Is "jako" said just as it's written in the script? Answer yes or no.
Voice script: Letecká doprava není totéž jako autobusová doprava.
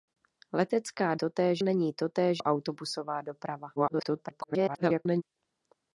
no